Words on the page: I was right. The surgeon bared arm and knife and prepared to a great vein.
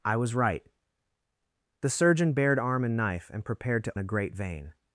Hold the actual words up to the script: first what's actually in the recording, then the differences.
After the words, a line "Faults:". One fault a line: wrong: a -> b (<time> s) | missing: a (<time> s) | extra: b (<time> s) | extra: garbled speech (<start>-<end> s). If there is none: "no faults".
I was right. The surgeon bared arm and knife and prepared to a great vein.
Faults:
no faults